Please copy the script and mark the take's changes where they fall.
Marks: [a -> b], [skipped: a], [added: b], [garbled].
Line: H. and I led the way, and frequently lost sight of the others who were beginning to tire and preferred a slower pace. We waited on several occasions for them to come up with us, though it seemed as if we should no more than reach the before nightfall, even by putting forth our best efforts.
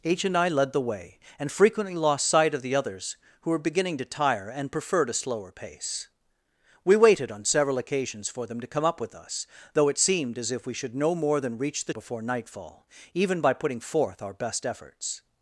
H. and I led the way, and frequently lost sight of the others who were beginning to tire and preferred a slower pace. We waited on several occasions for them to come up with us, though it seemed as if we should no more than reach the before nightfall, even by putting forth our best efforts.